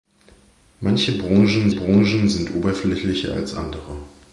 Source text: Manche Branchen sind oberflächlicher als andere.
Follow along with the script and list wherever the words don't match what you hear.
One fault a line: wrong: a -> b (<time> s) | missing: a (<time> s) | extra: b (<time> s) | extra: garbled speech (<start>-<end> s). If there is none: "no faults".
extra: Branchen (1.7 s)